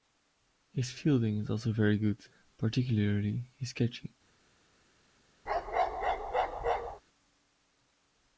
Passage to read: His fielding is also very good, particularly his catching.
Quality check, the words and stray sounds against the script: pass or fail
fail